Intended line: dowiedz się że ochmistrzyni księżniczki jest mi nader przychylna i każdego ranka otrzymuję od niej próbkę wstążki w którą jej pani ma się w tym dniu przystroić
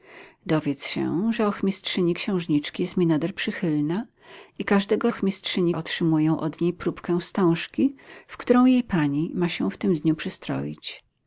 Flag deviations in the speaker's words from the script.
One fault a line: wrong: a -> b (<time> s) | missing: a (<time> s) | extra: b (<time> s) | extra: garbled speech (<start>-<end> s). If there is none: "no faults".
wrong: ranka -> ochmistrzyni (5.1 s)